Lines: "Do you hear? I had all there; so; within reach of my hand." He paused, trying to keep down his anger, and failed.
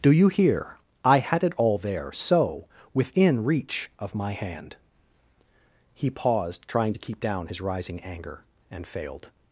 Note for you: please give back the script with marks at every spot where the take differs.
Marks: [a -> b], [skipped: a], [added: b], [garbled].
"Do you hear? I had [added: it] all there; so; within reach of my hand." He paused, trying to keep down his [added: rising] anger, and failed.